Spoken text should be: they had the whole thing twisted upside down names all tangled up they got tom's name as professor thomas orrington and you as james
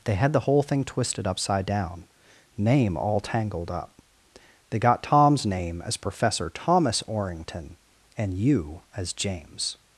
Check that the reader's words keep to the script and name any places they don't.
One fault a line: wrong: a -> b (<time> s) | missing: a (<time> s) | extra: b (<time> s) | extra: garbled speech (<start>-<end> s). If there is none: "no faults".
wrong: names -> name (2.6 s)